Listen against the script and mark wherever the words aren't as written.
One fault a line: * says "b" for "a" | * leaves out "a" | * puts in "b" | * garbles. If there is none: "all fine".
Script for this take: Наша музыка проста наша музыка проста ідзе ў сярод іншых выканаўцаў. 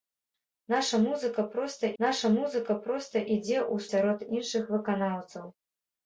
all fine